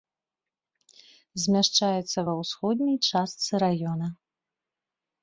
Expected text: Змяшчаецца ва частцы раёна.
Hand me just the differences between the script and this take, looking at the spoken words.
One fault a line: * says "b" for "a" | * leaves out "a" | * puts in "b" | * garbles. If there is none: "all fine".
* puts in "ўсходняй"